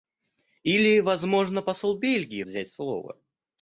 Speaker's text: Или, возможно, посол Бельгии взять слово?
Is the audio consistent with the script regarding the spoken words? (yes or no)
yes